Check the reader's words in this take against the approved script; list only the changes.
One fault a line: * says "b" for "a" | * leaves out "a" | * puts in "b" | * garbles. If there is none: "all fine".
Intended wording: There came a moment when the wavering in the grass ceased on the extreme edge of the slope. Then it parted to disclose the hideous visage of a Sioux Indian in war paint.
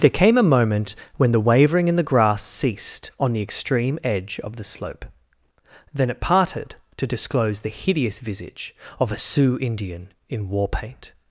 all fine